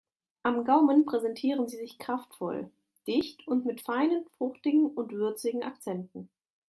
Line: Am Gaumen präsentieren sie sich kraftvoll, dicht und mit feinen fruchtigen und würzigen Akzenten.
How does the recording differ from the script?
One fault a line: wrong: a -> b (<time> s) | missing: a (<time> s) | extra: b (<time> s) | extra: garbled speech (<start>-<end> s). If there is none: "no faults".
no faults